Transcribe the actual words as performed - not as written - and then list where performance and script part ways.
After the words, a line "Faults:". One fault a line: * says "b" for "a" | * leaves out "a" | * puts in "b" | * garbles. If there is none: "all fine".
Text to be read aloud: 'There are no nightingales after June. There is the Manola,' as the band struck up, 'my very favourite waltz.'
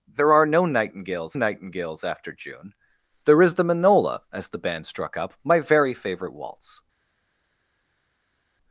'There are no nightingales nightingales after June. There is the Manola,' as the band struck up, 'my very favourite waltz.'
Faults:
* puts in "nightingales"